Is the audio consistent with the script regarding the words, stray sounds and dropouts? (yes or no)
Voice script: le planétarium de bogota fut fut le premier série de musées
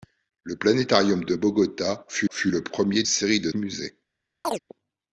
no